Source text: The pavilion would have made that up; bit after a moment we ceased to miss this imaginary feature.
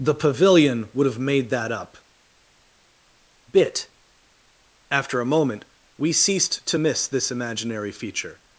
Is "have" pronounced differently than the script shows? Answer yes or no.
no